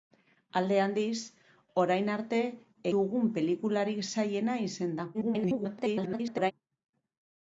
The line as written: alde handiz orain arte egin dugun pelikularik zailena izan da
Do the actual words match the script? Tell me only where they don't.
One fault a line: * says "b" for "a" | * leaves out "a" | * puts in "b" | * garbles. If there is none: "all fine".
* leaves out "egin"
* garbles